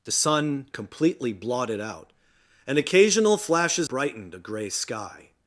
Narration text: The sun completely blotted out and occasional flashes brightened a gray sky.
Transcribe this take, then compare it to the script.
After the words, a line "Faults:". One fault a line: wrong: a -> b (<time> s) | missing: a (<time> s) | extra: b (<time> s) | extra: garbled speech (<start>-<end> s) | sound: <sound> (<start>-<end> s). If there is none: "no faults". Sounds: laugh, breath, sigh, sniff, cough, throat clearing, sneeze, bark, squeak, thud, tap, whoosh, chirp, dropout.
The sun completely blotted out and occasional flashes brightened a gray sky.
Faults:
no faults